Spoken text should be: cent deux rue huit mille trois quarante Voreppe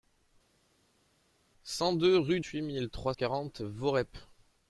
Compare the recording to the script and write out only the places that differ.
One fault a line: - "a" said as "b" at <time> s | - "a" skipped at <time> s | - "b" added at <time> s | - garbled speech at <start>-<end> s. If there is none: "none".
none